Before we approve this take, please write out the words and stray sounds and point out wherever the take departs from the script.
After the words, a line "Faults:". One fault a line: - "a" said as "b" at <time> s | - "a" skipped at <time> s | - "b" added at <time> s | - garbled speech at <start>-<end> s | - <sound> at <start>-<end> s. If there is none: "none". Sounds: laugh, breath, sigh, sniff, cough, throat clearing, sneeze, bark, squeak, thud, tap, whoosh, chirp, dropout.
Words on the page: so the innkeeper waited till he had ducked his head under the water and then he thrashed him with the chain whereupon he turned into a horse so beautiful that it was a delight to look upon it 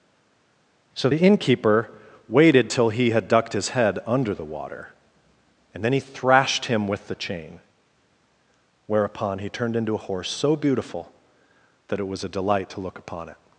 so the innkeeper waited till he had ducked his head under the water and then he thrashed him with the chain whereupon he turned into a horse so beautiful that it was a delight to look upon it
Faults:
none